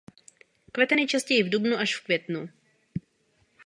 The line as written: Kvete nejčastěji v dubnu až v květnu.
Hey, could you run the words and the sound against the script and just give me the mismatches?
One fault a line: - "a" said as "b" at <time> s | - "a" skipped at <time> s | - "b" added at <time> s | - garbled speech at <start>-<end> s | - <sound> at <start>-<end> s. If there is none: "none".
none